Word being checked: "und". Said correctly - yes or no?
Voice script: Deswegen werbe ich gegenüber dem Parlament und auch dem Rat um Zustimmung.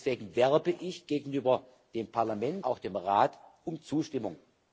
no